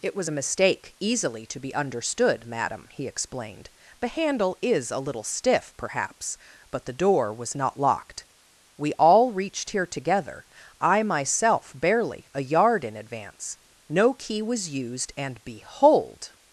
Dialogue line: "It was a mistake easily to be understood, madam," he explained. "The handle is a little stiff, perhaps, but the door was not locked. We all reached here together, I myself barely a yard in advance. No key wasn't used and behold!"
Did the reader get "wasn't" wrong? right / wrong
wrong